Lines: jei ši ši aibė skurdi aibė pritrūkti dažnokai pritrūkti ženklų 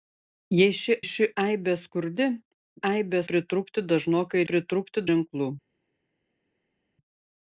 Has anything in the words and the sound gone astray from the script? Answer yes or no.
no